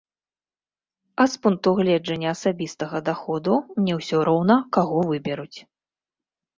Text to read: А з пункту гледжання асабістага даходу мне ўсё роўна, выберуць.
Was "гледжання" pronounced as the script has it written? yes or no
yes